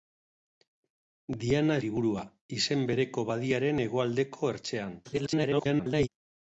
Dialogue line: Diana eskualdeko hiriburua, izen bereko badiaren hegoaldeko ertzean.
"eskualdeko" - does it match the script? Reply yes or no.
no